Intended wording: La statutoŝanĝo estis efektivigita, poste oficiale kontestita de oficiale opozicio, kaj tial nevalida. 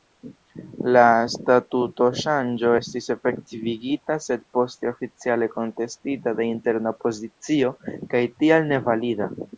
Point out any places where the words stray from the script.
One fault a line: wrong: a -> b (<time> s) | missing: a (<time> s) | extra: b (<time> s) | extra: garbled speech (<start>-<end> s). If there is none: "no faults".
extra: sed (4.3 s)
wrong: oficiale -> interna (6.6 s)